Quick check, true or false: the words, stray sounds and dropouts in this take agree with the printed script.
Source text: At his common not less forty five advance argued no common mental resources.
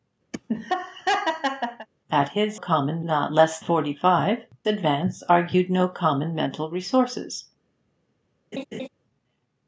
false